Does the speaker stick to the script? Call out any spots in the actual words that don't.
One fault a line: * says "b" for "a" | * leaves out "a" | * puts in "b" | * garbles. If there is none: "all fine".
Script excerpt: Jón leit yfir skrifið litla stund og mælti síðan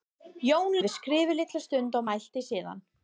* leaves out "leit"